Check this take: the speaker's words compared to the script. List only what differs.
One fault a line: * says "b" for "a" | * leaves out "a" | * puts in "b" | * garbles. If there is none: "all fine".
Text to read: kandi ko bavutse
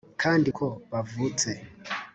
all fine